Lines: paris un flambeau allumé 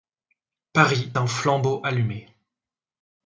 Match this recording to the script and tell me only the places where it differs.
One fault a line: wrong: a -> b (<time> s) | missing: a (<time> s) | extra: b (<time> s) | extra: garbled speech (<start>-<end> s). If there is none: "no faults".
no faults